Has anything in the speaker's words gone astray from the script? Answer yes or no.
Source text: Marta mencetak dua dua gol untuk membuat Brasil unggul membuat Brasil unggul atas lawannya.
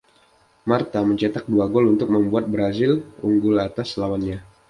yes